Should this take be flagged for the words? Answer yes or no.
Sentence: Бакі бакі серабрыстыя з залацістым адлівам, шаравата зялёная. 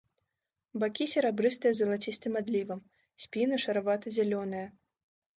yes